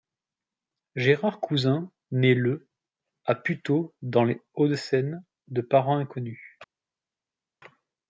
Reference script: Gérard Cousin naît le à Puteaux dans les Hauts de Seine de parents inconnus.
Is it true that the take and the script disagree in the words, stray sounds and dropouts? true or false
false